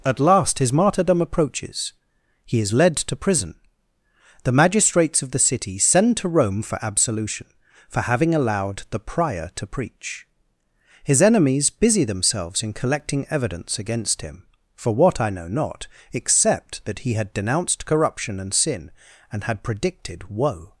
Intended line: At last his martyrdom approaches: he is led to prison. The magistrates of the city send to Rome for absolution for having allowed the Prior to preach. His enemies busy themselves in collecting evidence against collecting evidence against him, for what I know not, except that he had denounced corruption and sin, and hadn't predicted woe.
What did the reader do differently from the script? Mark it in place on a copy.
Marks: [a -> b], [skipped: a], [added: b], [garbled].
At last his martyrdom approaches: he is led to prison. The magistrates of the city send to Rome for absolution for having allowed the Prior to preach. His enemies busy themselves in collecting evidence against [skipped: collecting evidence against] him, for what I know not, except that he had denounced corruption and sin, and [hadn't -> had] predicted woe.